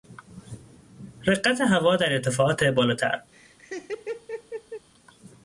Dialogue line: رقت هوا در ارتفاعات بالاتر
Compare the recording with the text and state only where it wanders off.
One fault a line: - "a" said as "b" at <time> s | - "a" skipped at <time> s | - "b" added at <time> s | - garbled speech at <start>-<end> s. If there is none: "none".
none